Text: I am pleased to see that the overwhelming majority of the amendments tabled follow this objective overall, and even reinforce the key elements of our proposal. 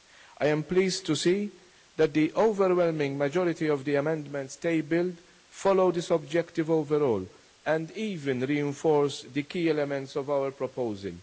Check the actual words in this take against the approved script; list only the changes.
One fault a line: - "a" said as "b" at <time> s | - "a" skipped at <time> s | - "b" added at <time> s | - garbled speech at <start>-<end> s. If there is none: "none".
none